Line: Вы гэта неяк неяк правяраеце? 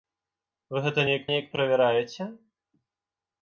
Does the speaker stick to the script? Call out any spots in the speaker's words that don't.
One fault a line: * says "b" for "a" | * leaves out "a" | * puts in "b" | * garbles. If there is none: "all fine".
all fine